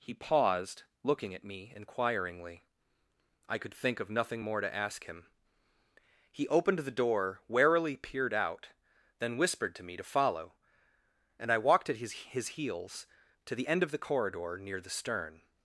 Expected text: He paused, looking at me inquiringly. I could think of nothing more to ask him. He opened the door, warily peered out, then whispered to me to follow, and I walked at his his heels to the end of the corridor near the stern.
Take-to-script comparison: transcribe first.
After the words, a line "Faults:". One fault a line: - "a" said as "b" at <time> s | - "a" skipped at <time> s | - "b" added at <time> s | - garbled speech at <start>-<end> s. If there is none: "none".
He paused, looking at me inquiringly. I could think of nothing more to ask him. He opened the door, warily peered out, then whispered to me to follow, and I walked at his his heels to the end of the corridor near the stern.
Faults:
none